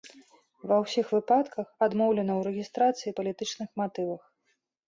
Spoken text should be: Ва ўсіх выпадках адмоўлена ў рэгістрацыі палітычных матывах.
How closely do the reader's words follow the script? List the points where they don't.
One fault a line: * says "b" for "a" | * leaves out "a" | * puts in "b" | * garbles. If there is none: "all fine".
all fine